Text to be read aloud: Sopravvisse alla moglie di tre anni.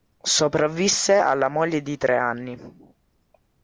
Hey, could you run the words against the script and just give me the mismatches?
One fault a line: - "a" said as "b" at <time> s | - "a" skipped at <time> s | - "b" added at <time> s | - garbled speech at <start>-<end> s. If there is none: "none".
none